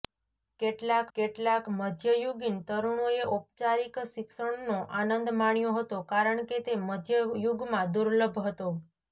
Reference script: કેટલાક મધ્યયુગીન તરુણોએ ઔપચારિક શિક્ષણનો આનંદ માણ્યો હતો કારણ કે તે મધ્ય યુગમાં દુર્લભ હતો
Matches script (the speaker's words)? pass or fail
fail